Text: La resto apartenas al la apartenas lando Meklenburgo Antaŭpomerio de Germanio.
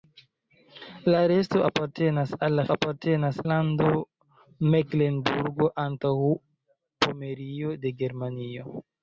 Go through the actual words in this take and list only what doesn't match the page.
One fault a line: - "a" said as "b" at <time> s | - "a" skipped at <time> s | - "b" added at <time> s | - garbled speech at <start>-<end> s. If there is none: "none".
none